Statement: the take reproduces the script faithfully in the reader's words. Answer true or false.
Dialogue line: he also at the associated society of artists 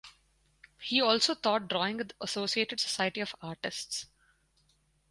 false